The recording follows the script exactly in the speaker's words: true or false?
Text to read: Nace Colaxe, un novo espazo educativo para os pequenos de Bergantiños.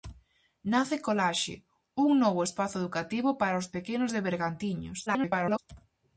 false